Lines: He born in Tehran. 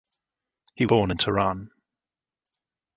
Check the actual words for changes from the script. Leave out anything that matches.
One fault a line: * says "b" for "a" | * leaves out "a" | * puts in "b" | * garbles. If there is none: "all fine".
all fine